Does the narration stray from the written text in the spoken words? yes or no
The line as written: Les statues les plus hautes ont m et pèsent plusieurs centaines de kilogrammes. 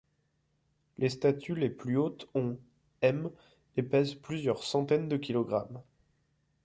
no